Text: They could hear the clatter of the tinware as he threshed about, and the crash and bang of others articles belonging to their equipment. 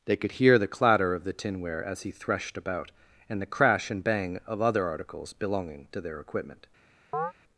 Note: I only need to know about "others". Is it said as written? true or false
false